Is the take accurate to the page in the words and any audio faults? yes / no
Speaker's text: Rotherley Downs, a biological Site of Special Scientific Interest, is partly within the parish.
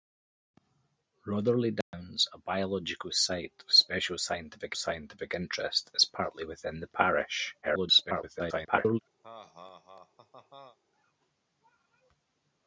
no